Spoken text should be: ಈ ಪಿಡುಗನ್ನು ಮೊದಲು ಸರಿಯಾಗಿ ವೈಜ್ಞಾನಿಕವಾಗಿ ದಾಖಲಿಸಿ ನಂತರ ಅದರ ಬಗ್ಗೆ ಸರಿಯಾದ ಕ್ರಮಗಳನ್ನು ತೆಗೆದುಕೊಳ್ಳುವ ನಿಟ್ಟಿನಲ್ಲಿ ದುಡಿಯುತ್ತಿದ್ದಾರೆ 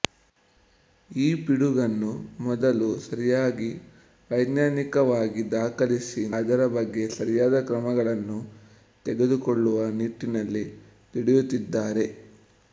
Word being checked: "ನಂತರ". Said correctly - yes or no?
no